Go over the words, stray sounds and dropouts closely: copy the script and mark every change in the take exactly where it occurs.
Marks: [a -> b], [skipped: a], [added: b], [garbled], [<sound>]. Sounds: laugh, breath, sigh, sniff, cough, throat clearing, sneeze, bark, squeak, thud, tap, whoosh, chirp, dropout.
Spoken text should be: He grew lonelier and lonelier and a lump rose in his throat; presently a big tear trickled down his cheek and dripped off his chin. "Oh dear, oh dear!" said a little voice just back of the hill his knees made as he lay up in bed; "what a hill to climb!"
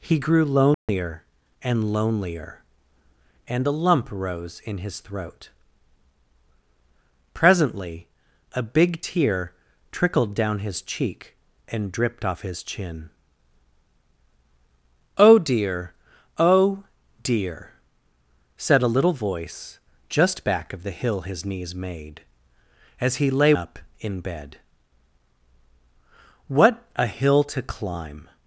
He grew lonelier [dropout] and lonelier and a lump rose in his throat; presently a big tear trickled down his cheek and dripped off his chin. "Oh dear, oh dear!" said a little voice just back of the hill his knees made as he lay up in bed; "what a hill to climb!"